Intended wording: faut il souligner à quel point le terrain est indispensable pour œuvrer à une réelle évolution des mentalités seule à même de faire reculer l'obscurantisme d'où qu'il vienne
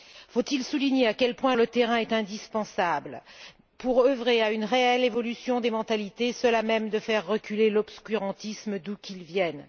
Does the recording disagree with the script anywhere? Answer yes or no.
no